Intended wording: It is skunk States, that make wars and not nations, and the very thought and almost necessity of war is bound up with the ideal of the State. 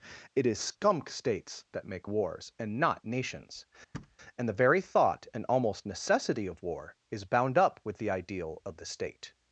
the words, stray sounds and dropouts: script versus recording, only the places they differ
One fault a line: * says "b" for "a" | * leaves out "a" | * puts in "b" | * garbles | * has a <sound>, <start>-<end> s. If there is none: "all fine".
* has a thud, 3.9-4.2 s